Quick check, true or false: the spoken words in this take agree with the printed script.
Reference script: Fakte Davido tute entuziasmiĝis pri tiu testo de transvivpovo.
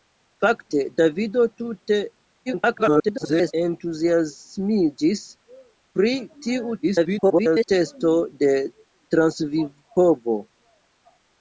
false